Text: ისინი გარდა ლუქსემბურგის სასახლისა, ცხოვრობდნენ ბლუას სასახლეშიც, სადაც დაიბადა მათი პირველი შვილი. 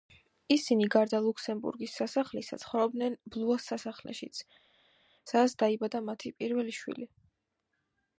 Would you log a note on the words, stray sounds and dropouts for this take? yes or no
no